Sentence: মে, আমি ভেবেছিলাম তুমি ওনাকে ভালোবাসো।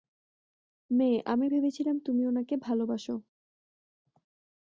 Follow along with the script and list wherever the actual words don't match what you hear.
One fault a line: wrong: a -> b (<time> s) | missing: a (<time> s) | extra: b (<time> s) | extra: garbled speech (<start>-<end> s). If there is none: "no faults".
no faults